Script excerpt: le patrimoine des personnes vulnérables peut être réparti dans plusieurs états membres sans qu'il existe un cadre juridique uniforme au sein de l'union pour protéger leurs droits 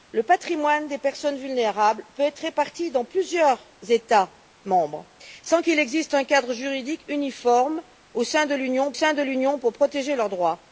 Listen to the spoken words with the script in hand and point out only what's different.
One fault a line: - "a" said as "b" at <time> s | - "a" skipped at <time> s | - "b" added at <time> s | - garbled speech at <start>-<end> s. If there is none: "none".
- "sein de l'union" added at 8.9 s